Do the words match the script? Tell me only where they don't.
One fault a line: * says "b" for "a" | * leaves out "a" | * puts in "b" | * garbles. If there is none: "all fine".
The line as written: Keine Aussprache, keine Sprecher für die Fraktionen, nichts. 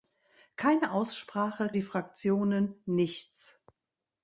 * leaves out "keine Sprecher für"